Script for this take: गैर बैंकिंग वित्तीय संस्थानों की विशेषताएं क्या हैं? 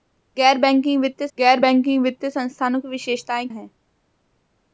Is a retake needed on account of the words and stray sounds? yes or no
yes